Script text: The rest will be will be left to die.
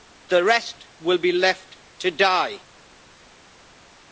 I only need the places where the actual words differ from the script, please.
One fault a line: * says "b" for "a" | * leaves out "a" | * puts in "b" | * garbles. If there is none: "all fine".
* leaves out "will be"